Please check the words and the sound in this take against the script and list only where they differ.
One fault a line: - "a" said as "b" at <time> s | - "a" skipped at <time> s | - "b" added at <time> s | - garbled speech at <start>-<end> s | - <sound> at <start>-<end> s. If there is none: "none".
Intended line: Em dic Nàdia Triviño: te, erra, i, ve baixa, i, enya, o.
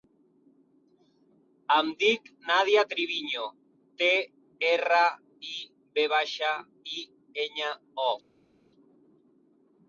none